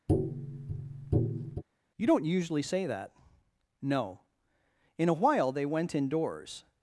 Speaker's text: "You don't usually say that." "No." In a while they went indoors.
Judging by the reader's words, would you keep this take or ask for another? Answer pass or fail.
pass